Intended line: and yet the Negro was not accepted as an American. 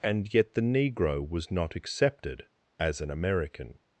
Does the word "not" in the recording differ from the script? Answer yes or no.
no